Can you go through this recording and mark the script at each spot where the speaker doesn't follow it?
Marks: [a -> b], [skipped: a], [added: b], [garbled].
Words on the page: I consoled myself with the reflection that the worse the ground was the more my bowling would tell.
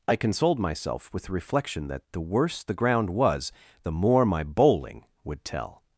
I consoled myself with the reflection that the worse the ground was the more my bowling would tell.